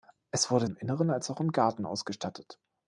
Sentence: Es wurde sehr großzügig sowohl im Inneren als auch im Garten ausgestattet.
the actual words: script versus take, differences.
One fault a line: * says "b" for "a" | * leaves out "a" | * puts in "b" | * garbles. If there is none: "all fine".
* leaves out "sehr großzügig sowohl"